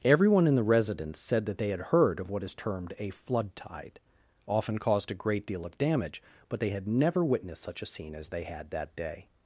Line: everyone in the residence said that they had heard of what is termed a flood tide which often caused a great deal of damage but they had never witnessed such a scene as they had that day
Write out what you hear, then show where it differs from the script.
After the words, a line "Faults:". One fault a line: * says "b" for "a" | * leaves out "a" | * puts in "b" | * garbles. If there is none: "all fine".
everyone in the residence said that they had heard of what is termed a flood tide often caused a great deal of damage but they had never witnessed such a scene as they had that day
Faults:
* leaves out "which"